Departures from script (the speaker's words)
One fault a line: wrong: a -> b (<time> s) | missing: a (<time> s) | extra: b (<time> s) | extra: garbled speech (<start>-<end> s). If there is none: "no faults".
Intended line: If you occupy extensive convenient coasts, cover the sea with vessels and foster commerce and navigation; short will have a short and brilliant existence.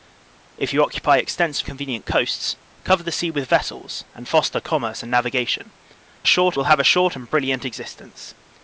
no faults